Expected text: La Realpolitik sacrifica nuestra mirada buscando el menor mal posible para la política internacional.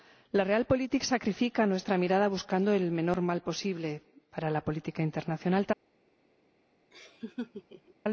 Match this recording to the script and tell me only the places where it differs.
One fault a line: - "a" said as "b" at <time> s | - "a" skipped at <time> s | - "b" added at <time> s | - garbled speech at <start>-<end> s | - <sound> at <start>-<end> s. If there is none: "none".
- laugh at 6.9-7.9 s